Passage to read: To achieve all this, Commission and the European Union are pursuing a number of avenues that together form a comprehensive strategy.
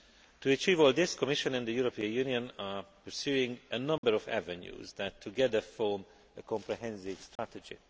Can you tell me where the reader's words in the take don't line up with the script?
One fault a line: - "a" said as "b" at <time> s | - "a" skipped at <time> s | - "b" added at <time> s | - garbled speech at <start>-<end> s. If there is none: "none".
none